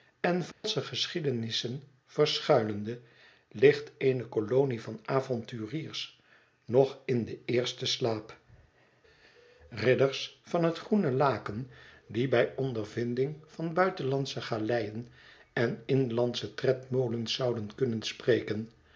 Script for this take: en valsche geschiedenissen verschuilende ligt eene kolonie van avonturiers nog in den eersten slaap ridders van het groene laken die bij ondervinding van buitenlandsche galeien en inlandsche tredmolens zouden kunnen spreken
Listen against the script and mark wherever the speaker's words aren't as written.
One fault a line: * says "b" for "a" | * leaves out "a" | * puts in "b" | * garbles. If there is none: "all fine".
all fine